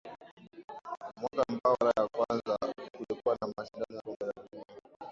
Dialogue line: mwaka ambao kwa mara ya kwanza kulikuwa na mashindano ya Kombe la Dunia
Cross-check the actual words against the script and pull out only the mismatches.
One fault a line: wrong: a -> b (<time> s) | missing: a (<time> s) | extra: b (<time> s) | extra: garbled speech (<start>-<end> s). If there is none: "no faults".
missing: kwa (1.8 s)
missing: ya (4.0 s)